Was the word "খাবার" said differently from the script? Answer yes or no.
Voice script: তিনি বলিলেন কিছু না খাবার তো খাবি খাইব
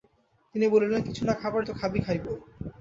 no